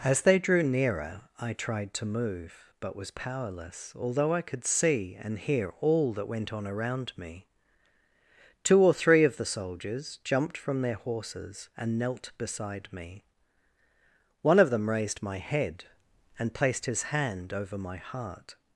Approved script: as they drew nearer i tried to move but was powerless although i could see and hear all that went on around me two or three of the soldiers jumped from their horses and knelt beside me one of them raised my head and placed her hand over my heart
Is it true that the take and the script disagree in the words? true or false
true